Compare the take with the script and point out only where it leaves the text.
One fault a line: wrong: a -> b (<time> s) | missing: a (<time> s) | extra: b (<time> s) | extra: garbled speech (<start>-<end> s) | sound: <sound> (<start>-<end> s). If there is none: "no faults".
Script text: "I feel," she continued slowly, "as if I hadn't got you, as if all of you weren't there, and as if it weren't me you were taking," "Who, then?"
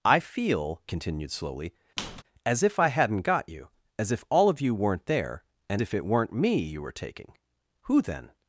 missing: she (0.8 s)
sound: squeak (2.0-2.2 s)
missing: as (5.8 s)